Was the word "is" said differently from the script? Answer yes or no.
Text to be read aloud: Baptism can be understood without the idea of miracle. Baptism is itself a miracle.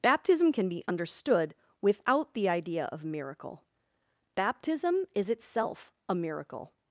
no